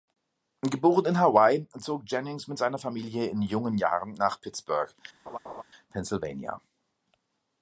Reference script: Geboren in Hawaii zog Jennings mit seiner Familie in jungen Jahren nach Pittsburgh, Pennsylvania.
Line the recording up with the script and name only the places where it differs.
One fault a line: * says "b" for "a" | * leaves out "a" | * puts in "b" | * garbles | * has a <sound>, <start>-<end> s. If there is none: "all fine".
* has a laugh, 5.3-5.6 s